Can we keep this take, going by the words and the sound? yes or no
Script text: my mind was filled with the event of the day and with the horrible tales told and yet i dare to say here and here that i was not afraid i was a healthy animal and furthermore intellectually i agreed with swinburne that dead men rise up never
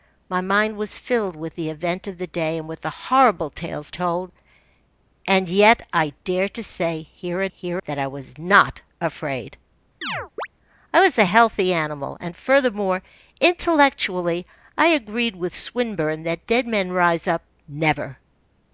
no